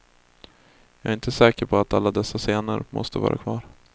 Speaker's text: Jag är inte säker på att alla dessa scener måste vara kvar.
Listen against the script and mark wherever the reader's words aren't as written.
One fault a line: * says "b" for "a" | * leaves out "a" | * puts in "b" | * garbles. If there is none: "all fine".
all fine